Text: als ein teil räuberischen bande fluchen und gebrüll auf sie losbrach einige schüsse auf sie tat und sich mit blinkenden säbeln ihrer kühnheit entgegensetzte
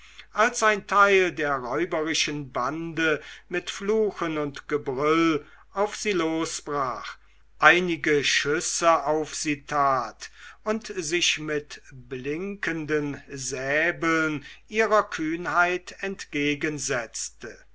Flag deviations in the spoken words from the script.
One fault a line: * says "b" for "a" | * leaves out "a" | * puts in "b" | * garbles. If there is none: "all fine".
* puts in "der"
* puts in "mit"